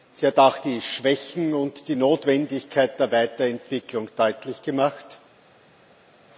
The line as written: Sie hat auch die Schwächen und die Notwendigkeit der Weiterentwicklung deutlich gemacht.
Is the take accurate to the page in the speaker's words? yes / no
yes